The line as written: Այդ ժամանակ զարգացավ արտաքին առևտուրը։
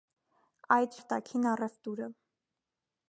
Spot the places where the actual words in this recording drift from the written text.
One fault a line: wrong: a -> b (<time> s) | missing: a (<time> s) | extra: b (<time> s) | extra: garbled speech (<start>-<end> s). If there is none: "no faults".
missing: ժամանակ զարգացավ (1.0 s)